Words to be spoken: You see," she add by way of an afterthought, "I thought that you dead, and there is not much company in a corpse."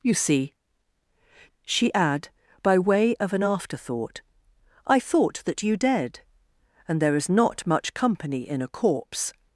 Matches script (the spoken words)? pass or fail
pass